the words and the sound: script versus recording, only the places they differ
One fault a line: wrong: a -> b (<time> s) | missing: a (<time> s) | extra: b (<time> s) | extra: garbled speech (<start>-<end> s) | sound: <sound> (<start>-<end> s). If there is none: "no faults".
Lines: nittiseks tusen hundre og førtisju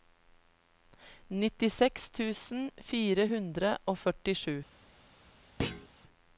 extra: fire (2.9 s)
sound: thud (5.6-5.9 s)